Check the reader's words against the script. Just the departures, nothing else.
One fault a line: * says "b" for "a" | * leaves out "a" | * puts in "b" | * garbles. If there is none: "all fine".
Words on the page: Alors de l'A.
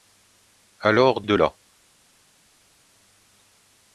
all fine